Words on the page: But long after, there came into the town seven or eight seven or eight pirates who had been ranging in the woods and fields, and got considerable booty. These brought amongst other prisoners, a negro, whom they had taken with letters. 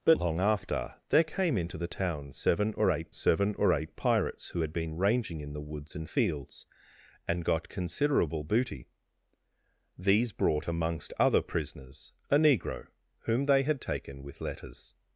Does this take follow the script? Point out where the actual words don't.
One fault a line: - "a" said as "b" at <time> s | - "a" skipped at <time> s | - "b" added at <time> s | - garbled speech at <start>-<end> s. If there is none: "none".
none